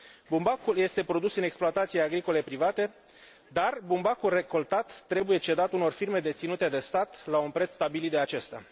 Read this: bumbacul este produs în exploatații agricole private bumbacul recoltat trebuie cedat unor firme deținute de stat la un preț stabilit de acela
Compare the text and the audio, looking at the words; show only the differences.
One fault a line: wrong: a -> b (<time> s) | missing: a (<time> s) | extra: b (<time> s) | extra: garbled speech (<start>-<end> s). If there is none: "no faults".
extra: dar (3.5 s)
wrong: acela -> acesta (8.2 s)